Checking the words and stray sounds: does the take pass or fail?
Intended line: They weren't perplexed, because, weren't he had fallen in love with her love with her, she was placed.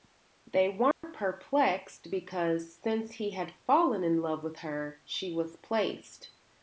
fail